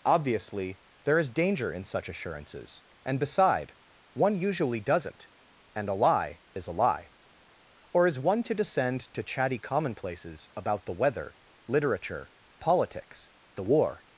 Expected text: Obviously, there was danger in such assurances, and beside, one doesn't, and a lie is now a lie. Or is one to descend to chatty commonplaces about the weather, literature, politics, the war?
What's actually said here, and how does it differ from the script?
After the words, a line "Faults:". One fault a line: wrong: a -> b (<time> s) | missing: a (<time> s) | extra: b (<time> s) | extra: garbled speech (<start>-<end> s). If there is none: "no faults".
Obviously, there is danger in such assurances, and beside, one usually doesn't, and a lie is a lie. Or is one to descend to chatty commonplaces about the weather, literature, politics, the war?
Faults:
wrong: was -> is (1.2 s)
extra: usually (4.3 s)
missing: now (6.7 s)